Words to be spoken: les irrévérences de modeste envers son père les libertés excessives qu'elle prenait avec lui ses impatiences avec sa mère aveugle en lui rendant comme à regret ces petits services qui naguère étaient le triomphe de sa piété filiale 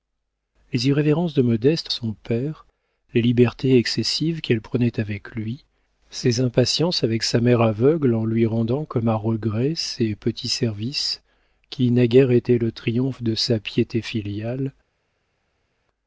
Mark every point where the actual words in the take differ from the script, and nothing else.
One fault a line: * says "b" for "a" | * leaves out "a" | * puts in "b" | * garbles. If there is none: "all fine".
* leaves out "envers"